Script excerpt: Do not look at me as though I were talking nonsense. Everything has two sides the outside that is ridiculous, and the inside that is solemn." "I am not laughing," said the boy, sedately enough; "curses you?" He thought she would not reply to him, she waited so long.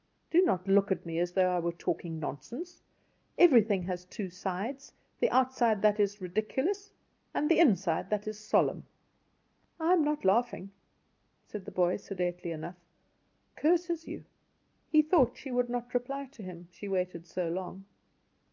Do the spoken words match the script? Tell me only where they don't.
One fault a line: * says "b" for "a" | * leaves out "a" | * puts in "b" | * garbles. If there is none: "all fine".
all fine